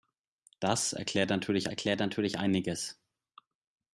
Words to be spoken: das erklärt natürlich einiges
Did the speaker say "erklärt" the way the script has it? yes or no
yes